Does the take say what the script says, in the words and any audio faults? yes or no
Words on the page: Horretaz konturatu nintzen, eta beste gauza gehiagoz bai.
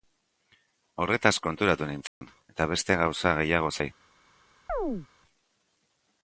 no